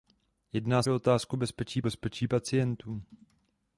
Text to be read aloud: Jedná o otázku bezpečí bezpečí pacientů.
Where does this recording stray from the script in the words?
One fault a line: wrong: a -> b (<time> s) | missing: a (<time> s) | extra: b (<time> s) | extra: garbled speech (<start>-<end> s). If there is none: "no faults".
no faults